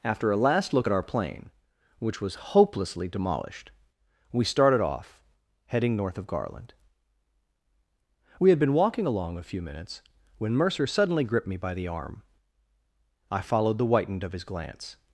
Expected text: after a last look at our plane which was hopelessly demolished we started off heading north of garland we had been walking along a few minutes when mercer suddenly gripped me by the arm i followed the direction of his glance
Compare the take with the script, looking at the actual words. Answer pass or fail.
fail